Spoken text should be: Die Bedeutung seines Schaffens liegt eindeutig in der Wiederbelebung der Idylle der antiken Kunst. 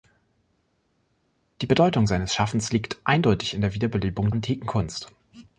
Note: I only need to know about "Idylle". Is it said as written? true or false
false